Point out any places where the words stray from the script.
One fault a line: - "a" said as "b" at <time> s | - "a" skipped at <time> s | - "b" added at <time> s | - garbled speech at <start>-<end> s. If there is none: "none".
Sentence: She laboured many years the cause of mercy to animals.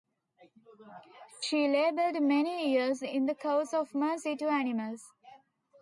- "in" added at 3.0 s